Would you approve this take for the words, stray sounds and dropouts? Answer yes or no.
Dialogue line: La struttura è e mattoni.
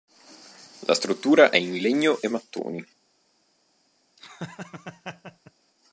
no